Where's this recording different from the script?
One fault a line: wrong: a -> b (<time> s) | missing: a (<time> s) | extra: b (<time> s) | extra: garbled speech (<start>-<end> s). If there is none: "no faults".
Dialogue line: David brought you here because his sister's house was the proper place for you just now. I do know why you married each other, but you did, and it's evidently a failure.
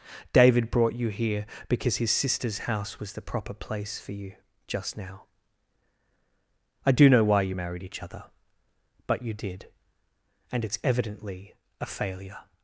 no faults